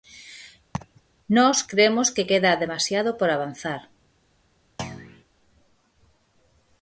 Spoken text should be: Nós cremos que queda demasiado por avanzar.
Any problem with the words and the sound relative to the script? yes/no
yes